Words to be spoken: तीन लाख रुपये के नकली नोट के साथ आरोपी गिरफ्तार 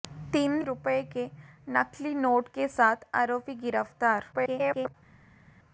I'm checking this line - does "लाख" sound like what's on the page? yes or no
no